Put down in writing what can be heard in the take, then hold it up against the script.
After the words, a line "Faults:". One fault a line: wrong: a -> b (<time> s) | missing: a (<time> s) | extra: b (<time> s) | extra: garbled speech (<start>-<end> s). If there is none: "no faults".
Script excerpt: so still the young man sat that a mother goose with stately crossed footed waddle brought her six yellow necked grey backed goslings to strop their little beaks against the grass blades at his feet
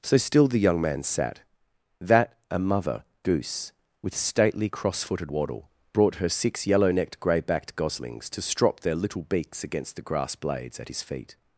so still the young man sat that a mother goose with stately cross footed waddle brought her six yellow necked grey backed goslings to strop their little beaks against the grass blades at his feet
Faults:
wrong: crossed -> cross (4.6 s)